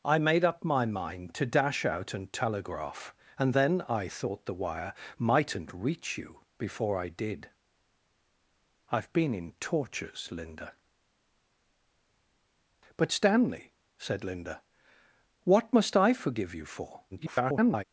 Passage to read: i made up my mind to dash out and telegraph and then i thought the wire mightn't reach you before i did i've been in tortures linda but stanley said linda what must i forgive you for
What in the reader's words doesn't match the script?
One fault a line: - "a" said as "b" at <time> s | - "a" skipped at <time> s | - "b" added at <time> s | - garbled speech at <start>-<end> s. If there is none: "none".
- garbled speech at 17.1-17.8 s